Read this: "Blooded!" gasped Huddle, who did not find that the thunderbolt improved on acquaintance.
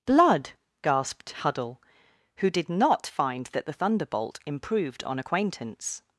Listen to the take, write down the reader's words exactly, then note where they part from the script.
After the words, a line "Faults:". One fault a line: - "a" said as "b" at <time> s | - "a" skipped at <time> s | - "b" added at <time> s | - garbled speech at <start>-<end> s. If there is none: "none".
"Blood!" gasped Huddle, who did not find that the thunderbolt improved on acquaintance.
Faults:
- "Blooded" said as "Blood" at 0.1 s